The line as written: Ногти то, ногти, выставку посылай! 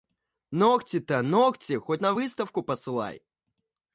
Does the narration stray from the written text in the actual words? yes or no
yes